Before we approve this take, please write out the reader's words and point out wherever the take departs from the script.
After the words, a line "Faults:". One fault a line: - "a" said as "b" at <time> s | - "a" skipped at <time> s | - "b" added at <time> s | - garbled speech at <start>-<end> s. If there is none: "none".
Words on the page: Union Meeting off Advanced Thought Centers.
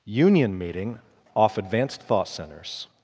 Union Meeting off Advanced Thought Centers.
Faults:
none